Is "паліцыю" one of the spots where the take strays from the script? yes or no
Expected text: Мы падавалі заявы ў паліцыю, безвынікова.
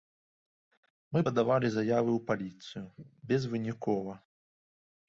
no